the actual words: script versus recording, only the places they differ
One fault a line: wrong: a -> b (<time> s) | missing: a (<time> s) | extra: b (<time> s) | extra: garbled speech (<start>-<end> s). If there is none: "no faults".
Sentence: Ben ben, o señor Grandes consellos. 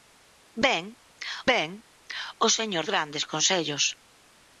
no faults